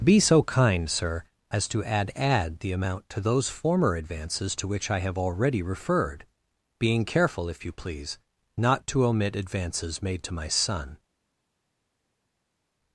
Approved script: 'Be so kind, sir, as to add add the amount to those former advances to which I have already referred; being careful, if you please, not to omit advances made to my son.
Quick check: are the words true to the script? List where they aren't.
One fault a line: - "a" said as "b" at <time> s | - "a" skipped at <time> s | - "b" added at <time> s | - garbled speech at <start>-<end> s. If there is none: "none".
none